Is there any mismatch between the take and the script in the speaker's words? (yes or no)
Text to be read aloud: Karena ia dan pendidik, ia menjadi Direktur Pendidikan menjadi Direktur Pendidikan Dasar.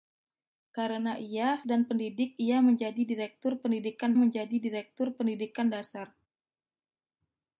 no